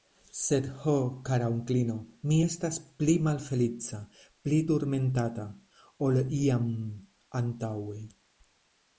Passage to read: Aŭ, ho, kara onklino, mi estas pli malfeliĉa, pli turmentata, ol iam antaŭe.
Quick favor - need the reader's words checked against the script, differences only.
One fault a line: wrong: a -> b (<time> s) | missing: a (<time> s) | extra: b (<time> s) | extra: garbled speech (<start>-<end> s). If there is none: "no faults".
wrong: Aŭ -> Sed (0.4 s)